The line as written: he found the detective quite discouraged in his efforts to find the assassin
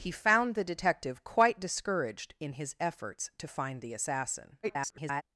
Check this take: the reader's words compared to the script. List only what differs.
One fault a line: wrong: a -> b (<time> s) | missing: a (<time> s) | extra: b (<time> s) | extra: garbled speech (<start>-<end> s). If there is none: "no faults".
extra: garbled speech (4.6-5.2 s)